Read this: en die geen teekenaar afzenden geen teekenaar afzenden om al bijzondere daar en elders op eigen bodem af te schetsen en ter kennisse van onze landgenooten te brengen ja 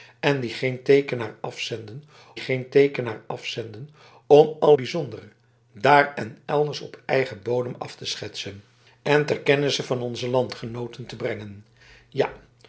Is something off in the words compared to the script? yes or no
no